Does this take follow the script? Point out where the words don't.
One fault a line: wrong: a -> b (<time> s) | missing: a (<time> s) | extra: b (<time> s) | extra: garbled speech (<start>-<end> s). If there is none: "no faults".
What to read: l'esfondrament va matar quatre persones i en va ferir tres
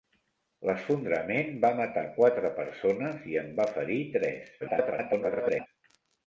extra: garbled speech (4.6-5.7 s)